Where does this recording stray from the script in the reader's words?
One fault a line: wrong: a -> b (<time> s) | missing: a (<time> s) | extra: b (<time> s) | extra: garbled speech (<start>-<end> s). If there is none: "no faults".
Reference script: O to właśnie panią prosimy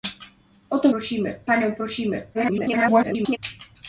wrong: właśnie -> prosimy (0.9 s)
extra: garbled speech (2.3-3.4 s)